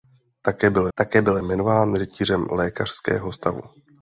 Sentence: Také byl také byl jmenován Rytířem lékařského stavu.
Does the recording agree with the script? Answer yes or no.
yes